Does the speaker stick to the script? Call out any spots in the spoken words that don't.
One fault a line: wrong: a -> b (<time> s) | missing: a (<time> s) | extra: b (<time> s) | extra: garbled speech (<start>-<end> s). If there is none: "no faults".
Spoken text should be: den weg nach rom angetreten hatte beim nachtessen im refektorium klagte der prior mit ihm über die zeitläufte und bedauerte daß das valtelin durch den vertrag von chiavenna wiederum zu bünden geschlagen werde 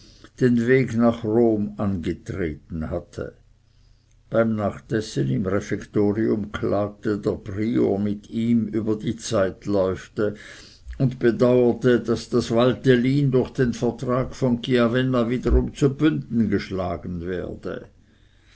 no faults